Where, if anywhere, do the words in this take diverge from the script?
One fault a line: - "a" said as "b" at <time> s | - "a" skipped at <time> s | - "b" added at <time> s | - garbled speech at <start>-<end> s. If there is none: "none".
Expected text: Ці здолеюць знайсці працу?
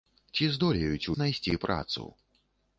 none